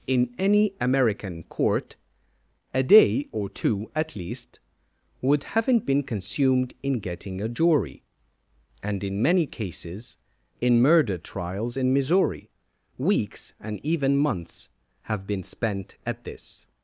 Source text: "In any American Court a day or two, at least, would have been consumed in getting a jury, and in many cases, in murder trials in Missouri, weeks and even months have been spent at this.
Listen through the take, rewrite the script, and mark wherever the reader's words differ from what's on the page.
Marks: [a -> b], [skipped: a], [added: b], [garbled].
"In any American Court a day or two, at least, would [have -> haven't] been consumed in getting a jury, and in many cases, in murder trials in Missouri, weeks and even months have been spent at this.